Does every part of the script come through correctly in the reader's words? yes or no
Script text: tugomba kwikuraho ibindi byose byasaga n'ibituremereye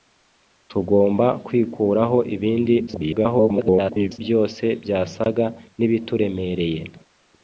no